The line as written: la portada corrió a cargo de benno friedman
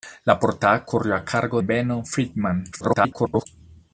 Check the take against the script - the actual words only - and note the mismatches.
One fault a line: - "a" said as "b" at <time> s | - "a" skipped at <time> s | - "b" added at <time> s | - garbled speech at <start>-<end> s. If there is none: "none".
- "de" skipped at 1.6 s
- garbled speech at 2.7-3.5 s